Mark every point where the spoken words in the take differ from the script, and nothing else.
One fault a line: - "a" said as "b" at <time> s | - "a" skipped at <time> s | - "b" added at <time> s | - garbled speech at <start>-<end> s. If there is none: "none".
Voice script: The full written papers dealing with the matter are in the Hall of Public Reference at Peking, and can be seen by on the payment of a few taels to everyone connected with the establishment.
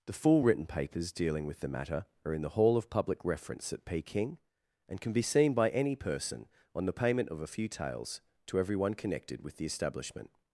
- "any person" added at 5.7 s